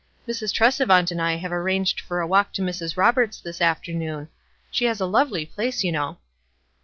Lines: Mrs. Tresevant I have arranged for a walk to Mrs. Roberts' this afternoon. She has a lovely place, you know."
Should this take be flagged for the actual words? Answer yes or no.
yes